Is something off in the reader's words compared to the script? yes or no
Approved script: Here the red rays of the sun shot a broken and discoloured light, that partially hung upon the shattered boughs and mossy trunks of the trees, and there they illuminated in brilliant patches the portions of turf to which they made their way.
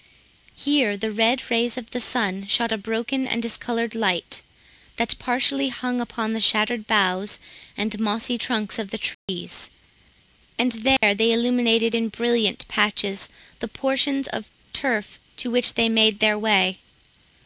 no